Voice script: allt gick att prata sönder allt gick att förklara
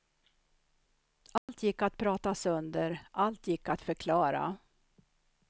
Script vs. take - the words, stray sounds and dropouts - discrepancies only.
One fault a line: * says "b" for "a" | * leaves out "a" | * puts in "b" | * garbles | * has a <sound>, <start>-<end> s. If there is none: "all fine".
* has a dropout, 1.4-1.5 s